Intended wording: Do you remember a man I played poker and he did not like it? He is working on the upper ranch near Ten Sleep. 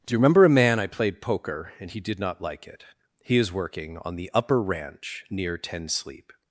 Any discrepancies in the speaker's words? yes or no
no